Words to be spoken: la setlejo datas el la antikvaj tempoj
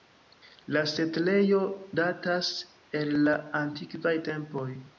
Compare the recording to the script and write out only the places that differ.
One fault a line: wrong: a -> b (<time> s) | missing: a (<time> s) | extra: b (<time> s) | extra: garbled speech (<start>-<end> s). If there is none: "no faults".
no faults